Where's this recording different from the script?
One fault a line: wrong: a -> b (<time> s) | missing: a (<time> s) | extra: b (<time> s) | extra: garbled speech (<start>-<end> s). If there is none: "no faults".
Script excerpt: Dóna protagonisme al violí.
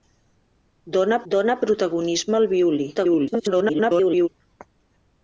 extra: dóna (1.3 s)
extra: garbled speech (2.9-4.3 s)